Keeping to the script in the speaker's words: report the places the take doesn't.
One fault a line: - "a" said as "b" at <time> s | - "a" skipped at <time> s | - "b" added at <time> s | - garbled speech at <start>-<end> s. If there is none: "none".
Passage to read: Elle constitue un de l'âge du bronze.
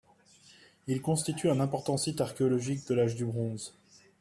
- "Elle" said as "Il" at 0.9 s
- "important site archéologique" added at 1.6 s